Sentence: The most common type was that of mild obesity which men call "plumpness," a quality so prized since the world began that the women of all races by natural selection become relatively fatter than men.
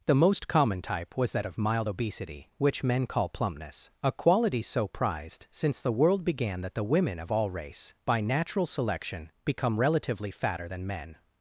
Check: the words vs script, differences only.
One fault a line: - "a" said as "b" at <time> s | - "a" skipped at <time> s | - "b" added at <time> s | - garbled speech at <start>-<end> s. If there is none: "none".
- "races" said as "race" at 7.5 s